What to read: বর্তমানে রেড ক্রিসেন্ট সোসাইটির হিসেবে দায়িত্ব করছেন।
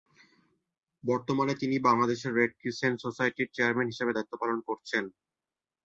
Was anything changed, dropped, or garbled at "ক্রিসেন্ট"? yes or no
no